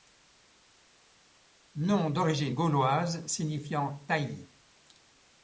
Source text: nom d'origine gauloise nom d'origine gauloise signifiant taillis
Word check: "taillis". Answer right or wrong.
right